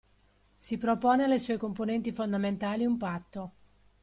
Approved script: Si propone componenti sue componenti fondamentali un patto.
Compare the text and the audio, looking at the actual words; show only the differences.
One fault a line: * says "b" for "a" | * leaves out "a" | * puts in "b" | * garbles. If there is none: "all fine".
* says "alle" for "componenti"